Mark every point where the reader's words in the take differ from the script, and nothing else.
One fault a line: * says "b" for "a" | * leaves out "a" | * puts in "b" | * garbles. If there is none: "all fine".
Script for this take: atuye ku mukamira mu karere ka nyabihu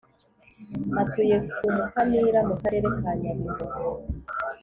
all fine